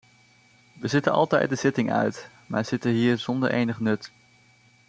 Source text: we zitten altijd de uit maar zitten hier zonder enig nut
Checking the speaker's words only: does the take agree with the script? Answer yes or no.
no